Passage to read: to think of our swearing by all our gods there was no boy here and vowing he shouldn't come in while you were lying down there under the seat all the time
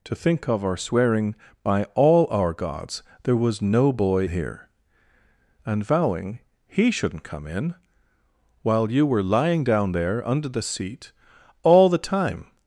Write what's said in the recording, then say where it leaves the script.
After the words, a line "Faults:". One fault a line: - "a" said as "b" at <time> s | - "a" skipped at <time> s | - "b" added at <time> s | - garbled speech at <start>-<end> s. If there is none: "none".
to think of our swearing by all our gods there was no boy here and vowing he shouldn't come in while you were lying down there under the seat all the time
Faults:
none